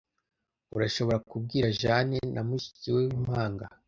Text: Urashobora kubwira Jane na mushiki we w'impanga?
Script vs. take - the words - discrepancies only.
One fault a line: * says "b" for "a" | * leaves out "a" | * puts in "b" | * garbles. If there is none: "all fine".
all fine